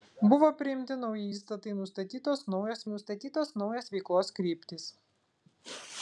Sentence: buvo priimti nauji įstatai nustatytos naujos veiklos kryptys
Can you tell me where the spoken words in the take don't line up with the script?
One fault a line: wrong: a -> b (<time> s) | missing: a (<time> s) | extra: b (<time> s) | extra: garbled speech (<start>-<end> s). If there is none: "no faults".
extra: nustatytos naujos (2.9 s)